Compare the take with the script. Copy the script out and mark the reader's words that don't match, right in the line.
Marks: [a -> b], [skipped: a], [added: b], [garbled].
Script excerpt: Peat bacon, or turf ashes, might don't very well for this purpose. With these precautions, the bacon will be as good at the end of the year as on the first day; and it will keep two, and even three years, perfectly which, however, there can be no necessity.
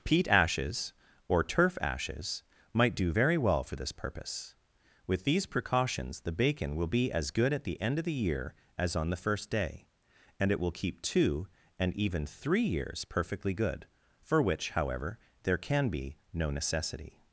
Peat [bacon, -> ashes] or turf ashes, might [don't -> do] very well for this purpose. With these precautions, the bacon will be as good at the end of the year as on the first day; and it will keep two, and even three years, perfectly [added: good for] which, however, there can be no necessity.